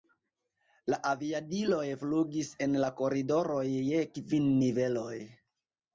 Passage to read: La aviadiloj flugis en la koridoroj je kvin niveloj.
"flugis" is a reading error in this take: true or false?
false